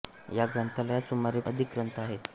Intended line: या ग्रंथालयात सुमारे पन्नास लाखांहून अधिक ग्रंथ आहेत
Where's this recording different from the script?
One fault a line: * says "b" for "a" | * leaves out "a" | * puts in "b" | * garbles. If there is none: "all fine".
* leaves out "पन्नास लाखांहून"